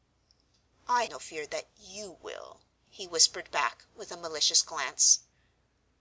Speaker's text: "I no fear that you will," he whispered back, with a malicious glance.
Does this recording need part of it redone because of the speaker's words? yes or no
no